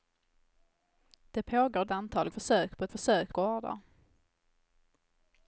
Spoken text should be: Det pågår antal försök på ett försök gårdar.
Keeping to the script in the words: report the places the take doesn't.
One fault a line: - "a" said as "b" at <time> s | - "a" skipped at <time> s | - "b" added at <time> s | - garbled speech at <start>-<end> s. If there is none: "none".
none